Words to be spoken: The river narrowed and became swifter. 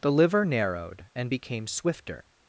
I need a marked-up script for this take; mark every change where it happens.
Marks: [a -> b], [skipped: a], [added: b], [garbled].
The [river -> liver] narrowed and became swifter.